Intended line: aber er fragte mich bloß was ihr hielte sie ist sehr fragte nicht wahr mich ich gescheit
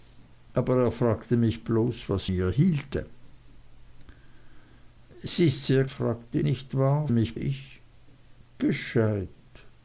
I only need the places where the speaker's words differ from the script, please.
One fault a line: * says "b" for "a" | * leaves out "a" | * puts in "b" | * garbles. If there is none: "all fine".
all fine